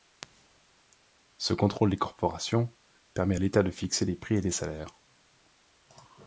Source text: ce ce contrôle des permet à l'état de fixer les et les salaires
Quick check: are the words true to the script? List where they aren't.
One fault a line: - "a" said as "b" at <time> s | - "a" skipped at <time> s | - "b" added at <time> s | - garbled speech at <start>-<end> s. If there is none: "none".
- "ce" skipped at 1.5 s
- "corporations" added at 2.0 s
- "prix" added at 4.2 s